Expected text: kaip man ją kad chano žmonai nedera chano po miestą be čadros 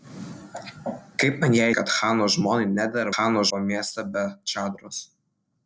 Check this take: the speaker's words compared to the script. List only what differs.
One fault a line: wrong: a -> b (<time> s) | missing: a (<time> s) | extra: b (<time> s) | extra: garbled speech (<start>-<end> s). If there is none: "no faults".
no faults